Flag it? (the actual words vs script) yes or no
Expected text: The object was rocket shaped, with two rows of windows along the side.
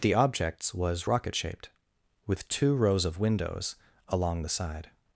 yes